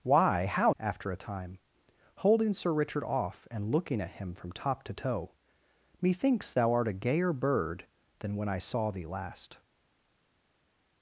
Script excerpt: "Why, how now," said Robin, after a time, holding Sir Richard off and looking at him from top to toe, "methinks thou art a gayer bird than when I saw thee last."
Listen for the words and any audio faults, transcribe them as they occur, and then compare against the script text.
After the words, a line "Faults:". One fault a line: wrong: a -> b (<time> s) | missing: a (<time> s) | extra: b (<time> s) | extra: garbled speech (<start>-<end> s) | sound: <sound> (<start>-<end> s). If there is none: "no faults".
"Why, how after a time, holding Sir Richard off and looking at him from top to toe, "methinks thou art a gayer bird than when I saw thee last."
Faults:
missing: now said Robin (0.7 s)